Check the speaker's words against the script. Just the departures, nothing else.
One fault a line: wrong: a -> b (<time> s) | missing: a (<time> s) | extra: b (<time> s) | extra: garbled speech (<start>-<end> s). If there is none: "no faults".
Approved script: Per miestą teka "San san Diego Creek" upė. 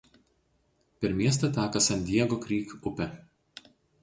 missing: san (2.0 s)